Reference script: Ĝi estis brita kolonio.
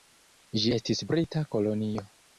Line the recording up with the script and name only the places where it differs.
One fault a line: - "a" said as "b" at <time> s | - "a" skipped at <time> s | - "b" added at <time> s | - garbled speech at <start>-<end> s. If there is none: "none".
none